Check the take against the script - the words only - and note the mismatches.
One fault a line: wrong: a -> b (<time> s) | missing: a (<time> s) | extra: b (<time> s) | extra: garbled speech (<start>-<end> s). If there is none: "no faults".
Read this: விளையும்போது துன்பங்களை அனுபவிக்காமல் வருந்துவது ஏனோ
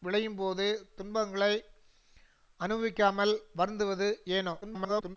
extra: garbled speech (4.6-5.2 s)